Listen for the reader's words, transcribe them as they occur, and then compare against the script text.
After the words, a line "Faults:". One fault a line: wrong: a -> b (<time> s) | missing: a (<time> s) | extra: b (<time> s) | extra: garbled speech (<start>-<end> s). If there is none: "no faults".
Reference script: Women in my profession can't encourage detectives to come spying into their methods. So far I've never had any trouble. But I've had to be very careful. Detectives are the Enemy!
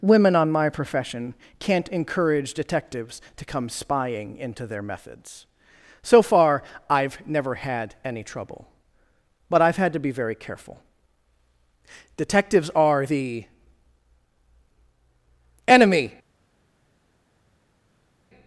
Women on my profession can't encourage detectives to come spying into their methods. So far I've never had any trouble. But I've had to be very careful. Detectives are the Enemy!
Faults:
wrong: in -> on (0.3 s)